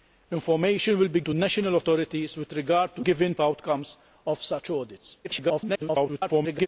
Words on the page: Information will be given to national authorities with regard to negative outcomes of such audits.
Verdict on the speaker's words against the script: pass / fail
fail